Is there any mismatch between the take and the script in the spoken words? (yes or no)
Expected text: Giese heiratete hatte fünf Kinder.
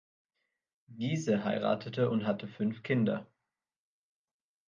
yes